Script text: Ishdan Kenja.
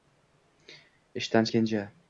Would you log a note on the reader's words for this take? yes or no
no